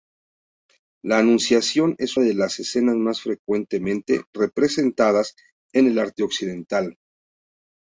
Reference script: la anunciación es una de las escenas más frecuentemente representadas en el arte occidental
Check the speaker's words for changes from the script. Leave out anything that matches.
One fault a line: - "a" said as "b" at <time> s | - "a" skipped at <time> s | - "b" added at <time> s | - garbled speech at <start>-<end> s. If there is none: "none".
- "una" skipped at 2.2 s